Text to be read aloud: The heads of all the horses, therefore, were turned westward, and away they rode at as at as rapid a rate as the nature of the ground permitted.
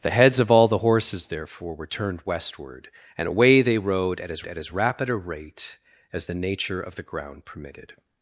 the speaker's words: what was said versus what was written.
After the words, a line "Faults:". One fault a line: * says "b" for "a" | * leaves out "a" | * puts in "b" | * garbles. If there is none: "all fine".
The heads of all the horses, therefore, were turned westward, and away they rode at as at as rapid a rate as the nature of the ground permitted.
Faults:
all fine